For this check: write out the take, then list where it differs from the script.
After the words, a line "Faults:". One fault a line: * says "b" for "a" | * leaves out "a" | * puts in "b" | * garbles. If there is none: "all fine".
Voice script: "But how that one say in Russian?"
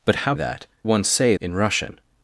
"But how that one say in Russian?"
Faults:
all fine